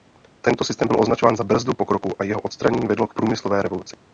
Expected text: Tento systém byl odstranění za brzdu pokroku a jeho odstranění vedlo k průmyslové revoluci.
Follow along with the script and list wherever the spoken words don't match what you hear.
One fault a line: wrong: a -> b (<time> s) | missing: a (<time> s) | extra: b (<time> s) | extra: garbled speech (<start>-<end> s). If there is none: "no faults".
wrong: odstranění -> označován (1.0 s)